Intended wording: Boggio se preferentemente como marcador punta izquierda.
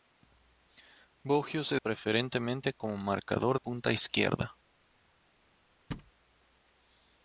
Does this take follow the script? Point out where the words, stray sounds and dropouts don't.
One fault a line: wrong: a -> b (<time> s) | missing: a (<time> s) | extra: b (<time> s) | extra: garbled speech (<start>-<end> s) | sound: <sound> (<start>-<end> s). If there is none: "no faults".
sound: thud (5.9-6.1 s)